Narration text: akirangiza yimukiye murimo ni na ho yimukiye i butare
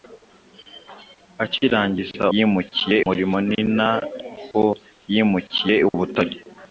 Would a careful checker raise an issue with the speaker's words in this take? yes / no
no